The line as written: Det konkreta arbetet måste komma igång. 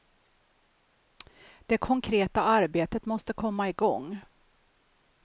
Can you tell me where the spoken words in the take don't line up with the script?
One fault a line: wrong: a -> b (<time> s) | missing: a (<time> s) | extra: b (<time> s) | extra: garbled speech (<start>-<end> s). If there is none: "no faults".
no faults